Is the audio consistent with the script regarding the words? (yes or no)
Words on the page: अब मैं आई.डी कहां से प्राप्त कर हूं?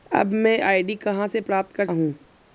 yes